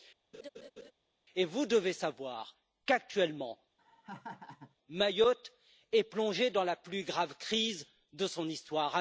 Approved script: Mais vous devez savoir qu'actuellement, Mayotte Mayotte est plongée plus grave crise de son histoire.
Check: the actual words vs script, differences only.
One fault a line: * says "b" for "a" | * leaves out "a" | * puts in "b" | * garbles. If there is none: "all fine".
* says "Et" for "Mais"
* leaves out "Mayotte"
* puts in "dans la"